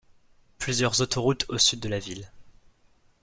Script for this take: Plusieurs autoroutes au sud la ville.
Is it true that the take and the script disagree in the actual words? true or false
true